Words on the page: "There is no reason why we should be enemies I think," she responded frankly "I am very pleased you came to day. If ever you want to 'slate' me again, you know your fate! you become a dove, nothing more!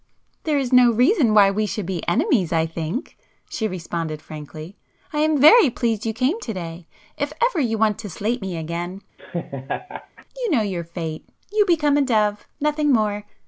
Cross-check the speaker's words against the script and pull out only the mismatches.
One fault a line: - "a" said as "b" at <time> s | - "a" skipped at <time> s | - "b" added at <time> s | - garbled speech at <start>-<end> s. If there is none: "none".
none